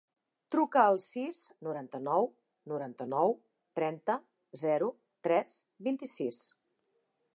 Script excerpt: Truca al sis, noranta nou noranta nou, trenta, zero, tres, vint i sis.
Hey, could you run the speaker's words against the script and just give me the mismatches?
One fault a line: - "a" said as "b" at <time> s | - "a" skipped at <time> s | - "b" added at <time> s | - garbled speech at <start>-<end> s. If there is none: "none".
none